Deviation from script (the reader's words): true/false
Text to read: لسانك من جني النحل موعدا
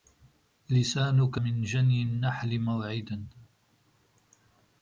false